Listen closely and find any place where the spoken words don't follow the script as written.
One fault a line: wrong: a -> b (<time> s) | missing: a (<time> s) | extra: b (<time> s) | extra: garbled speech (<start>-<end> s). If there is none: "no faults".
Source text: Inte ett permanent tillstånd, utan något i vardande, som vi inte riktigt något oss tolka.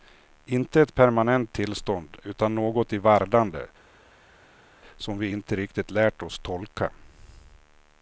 wrong: något -> lärt (5.9 s)